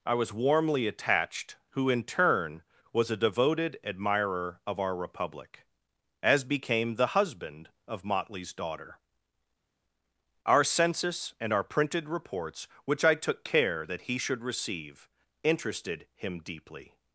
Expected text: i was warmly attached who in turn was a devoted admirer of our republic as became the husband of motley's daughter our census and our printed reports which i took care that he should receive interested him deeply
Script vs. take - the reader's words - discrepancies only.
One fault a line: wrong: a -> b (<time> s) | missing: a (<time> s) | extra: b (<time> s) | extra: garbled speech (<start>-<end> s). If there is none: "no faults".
no faults